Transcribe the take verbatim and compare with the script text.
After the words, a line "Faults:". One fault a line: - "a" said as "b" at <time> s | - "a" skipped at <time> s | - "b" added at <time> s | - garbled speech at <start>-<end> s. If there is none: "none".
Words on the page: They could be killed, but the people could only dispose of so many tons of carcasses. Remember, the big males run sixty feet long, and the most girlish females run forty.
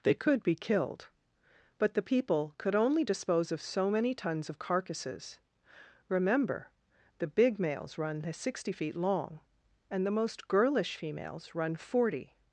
They could be killed, but the people could only dispose of so many tons of carcasses. Remember, the big males run sixty feet long, and the most girlish females run forty.
Faults:
none